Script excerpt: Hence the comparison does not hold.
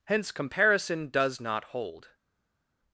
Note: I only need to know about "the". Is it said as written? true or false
false